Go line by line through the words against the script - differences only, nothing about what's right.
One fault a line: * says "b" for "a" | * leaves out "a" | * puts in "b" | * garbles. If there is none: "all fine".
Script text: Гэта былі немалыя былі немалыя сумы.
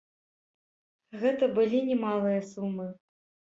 * leaves out "былі немалыя"